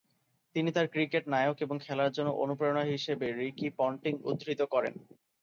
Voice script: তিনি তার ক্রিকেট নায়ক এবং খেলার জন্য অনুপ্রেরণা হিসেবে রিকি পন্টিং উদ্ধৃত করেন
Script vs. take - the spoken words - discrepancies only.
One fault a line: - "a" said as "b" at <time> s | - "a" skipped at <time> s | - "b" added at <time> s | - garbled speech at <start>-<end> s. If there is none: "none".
none